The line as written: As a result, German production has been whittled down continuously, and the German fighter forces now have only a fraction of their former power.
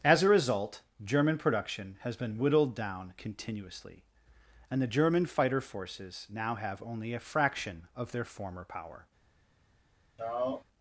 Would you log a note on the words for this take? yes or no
no